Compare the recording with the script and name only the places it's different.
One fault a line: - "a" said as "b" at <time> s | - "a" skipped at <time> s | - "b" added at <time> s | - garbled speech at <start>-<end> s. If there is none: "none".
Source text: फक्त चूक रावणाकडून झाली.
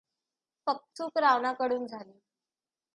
none